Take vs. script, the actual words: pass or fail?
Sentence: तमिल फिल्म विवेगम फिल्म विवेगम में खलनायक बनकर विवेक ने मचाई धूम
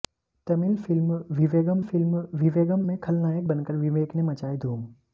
pass